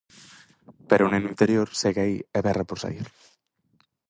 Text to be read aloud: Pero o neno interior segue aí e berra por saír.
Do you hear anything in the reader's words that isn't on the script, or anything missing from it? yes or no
no